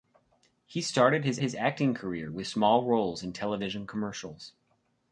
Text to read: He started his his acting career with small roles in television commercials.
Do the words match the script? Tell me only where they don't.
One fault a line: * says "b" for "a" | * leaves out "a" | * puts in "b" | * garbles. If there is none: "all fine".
all fine